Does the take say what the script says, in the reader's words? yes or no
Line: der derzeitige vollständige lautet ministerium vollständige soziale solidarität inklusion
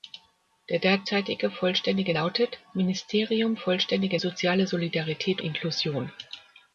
yes